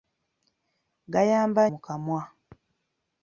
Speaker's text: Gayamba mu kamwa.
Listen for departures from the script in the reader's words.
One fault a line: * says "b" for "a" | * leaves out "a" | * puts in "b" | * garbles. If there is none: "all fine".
all fine